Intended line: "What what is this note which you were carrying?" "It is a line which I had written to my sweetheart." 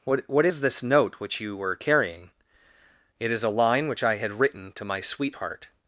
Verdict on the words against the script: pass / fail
pass